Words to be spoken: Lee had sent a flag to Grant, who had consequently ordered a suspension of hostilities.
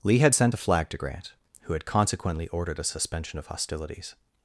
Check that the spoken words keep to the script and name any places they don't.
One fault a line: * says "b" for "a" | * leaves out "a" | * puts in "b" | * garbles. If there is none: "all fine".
all fine